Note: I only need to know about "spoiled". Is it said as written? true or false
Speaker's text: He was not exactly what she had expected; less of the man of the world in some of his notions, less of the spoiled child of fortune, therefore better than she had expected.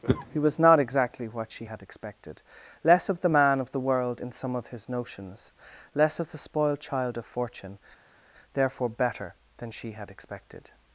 true